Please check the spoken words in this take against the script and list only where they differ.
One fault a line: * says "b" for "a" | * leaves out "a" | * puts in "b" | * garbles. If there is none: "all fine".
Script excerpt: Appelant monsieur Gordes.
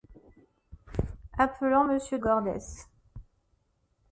all fine